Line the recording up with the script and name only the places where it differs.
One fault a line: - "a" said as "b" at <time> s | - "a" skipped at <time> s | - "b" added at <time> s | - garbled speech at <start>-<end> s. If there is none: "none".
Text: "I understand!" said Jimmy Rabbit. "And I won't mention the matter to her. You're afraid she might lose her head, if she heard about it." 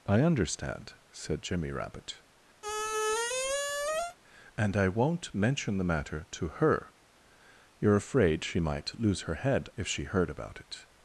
none